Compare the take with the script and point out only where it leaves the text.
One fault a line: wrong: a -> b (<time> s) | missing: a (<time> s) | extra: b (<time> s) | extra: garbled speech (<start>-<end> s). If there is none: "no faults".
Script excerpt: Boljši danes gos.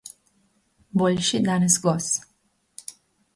no faults